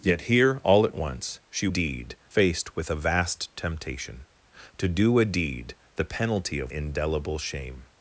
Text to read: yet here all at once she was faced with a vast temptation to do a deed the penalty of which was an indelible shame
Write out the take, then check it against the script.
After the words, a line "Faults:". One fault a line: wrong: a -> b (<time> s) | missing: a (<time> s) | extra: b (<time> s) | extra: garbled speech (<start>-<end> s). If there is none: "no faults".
yet here all at once she deed faced with a vast temptation to do a deed the penalty of indelible shame
Faults:
wrong: was -> deed (1.7 s)
missing: which was an (6.7 s)